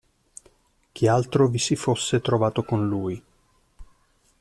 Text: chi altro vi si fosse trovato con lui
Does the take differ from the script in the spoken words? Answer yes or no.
no